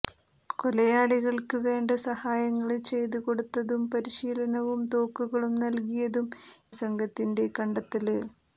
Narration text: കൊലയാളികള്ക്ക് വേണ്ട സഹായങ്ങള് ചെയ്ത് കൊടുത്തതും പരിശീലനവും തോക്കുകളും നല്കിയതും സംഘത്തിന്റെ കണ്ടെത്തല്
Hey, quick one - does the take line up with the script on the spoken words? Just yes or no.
yes